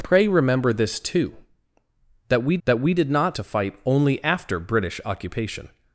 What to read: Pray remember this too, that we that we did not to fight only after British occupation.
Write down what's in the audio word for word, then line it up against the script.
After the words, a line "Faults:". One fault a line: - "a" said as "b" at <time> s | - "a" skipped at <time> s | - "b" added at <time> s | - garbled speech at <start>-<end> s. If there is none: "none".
Pray remember this too, that we that we did not to fight only after British occupation.
Faults:
none